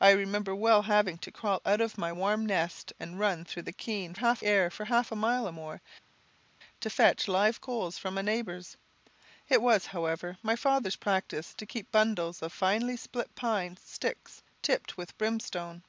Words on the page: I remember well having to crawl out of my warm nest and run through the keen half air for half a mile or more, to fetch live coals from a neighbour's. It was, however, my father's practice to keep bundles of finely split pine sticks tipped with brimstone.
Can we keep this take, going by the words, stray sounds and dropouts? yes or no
yes